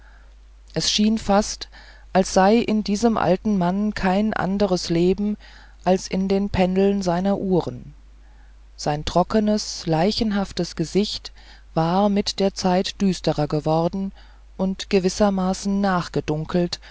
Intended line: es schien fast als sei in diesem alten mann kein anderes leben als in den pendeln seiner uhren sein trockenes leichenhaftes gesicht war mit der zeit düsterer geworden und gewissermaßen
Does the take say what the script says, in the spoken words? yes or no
yes